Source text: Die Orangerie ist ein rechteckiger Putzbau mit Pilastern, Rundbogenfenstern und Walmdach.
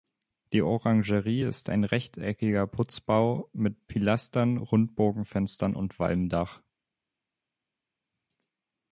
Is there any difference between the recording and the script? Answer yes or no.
no